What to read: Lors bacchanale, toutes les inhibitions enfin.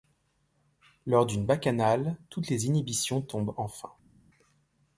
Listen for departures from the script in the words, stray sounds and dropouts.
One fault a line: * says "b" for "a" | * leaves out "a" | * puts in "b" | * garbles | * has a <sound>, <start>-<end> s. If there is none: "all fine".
* puts in "d'une"
* puts in "tombent"